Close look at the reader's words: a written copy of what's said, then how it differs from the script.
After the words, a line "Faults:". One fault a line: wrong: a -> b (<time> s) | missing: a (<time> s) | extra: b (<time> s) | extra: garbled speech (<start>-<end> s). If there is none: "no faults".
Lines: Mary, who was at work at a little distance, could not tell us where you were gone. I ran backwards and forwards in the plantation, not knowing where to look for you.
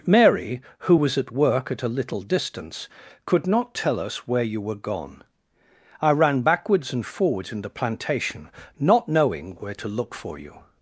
Mary, who was at work at a little distance, could not tell us where you were gone. I ran backwards and forwards in the plantation, not knowing where to look for you.
Faults:
no faults